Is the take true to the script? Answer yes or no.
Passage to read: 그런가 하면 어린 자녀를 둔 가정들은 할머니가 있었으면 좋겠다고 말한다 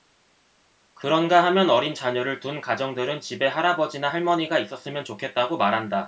no